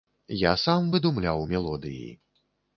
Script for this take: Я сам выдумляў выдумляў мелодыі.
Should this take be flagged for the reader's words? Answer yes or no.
yes